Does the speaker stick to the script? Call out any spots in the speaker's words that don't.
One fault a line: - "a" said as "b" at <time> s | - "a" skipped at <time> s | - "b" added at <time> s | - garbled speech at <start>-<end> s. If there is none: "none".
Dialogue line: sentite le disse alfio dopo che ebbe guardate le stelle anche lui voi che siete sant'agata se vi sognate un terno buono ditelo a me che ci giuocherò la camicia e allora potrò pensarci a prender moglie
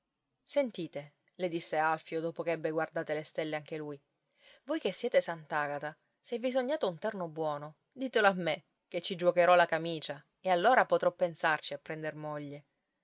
none